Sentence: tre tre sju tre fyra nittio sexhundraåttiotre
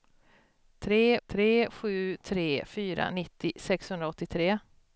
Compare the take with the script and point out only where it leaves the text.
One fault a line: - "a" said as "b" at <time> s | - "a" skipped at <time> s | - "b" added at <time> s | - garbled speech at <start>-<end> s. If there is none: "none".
none